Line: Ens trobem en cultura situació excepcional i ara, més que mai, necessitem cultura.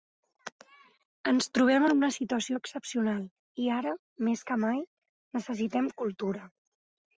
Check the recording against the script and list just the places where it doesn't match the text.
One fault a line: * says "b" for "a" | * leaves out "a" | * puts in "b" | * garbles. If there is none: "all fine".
* says "una" for "cultura"